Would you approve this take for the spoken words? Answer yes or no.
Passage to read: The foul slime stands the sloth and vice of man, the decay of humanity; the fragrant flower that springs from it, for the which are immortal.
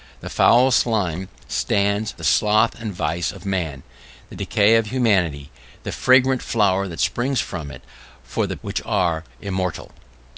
yes